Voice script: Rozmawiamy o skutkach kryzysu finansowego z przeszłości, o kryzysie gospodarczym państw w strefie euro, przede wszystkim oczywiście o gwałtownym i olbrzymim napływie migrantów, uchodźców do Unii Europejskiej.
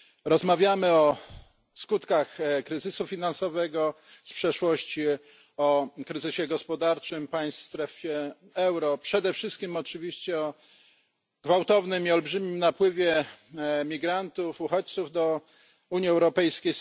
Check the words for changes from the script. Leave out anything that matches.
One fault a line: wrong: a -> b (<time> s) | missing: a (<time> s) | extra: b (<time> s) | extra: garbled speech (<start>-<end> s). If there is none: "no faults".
no faults